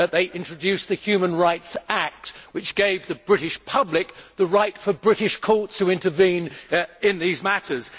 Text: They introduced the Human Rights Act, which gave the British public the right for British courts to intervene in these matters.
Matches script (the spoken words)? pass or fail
pass